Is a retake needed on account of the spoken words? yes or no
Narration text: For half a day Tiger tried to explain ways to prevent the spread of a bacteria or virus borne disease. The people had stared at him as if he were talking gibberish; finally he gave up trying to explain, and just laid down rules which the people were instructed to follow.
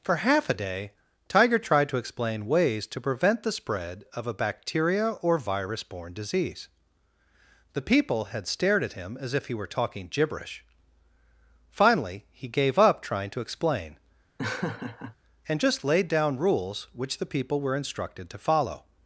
no